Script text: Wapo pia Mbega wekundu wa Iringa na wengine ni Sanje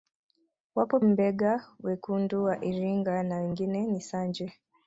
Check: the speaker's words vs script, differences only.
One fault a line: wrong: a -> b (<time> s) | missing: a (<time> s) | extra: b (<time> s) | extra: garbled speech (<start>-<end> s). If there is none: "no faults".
missing: pia (1.0 s)